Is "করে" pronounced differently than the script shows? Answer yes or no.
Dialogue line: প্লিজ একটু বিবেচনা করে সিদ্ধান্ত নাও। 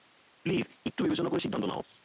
no